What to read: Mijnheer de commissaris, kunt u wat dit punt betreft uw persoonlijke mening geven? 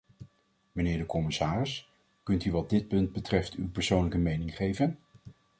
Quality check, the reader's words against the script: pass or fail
pass